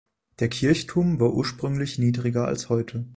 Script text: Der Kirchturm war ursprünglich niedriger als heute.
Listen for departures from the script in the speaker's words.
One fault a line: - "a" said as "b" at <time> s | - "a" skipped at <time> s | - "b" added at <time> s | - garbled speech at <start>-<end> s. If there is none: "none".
none